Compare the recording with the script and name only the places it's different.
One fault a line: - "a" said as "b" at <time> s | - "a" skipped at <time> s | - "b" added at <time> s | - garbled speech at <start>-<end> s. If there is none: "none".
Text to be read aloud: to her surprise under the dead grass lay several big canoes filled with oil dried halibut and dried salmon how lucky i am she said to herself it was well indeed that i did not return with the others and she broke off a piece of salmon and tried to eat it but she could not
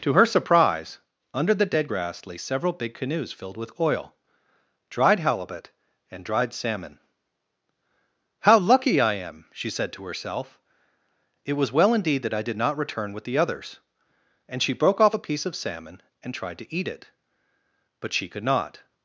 none